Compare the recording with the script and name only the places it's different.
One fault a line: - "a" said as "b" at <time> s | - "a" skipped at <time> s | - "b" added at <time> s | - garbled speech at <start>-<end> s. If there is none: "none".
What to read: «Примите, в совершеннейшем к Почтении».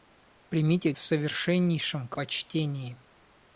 none